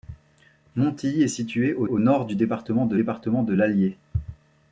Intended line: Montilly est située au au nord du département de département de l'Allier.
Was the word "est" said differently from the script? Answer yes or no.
no